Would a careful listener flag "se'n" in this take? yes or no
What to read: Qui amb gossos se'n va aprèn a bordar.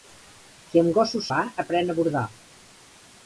yes